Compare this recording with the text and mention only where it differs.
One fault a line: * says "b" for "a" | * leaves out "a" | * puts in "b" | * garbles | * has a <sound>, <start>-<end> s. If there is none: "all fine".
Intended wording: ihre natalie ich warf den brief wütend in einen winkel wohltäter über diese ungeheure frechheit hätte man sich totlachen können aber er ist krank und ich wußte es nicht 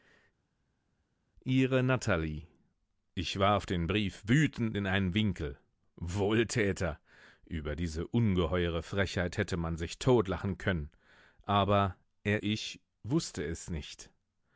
* leaves out "ist krank und"